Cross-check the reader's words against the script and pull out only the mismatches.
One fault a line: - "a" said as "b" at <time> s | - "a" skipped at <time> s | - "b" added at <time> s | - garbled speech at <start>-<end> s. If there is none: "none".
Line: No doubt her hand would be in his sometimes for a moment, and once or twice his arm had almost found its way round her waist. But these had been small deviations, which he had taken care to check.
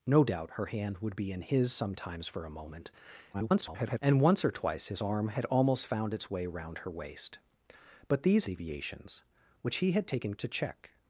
- garbled speech at 3.3-4.0 s
- "had been small" skipped at 8.4 s
- "care" skipped at 10.3 s